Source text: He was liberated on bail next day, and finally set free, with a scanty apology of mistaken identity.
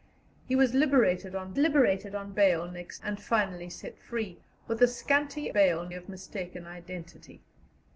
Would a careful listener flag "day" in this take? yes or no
yes